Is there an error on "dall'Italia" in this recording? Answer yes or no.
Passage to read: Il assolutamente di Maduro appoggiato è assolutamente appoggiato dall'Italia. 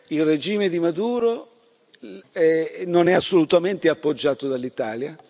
no